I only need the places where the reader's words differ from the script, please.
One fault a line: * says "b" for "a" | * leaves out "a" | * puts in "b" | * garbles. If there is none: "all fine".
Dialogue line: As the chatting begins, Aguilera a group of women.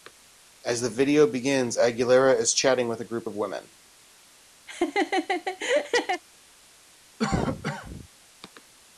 * says "video" for "chatting"
* puts in "is chatting with"